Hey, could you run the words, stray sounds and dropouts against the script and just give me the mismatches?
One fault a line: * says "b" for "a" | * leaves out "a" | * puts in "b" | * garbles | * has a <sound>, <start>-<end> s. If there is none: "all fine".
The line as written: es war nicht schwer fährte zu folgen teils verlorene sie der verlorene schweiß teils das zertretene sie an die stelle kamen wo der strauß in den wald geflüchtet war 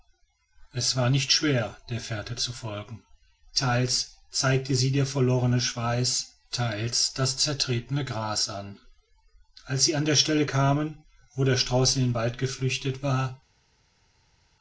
* puts in "der"
* says "zeigte" for "verlorene"
* puts in "gras an als"